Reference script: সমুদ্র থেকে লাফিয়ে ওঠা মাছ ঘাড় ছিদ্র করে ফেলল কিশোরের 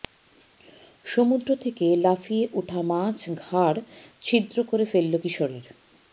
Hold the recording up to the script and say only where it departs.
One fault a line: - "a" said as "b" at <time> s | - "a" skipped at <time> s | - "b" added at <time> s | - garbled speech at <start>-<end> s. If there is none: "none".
none